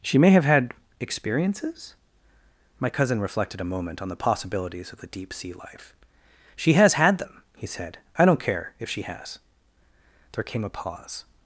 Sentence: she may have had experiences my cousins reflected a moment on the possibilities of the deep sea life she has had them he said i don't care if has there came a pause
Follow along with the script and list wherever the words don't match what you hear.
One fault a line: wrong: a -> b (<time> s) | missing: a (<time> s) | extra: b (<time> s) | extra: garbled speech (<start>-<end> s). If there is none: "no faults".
wrong: cousins -> cousin (2.9 s)
extra: she (8.9 s)